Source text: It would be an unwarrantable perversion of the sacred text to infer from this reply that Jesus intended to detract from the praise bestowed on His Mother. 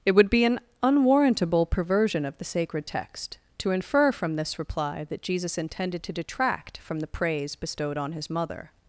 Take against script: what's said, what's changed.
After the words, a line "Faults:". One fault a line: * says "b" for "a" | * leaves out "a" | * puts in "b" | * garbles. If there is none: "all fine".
It would be an unwarrantable perversion of the sacred text to infer from this reply that Jesus intended to detract from the praise bestowed on His Mother.
Faults:
all fine